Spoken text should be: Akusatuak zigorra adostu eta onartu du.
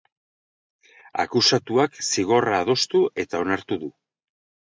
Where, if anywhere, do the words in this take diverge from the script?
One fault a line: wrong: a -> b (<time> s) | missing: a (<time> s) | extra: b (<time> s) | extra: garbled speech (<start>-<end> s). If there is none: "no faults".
no faults